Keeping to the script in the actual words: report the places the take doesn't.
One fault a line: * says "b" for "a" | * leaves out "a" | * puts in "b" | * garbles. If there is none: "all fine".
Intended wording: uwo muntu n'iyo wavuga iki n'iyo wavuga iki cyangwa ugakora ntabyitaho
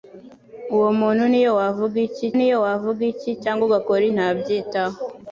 all fine